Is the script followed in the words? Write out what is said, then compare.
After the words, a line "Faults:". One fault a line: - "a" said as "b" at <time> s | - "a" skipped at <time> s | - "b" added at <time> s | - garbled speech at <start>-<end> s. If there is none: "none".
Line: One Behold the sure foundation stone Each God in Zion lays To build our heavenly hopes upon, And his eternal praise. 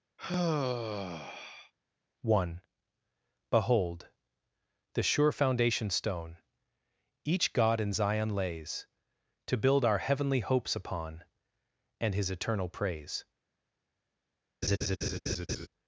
One Behold the sure foundation stone Each God in Zion lays To build our heavenly hopes upon, And his eternal praise.
Faults:
none